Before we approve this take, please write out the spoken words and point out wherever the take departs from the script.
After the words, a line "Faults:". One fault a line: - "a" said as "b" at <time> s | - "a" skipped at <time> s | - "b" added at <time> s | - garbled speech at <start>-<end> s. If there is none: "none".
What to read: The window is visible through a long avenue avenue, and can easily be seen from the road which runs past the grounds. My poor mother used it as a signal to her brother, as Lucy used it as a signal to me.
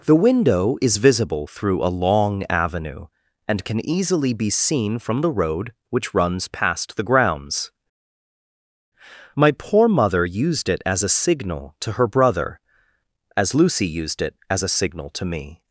The window is visible through a long avenue, and can easily be seen from the road which runs past the grounds. My poor mother used it as a signal to her brother, as Lucy used it as a signal to me.
Faults:
- "avenue" skipped at 3.1 s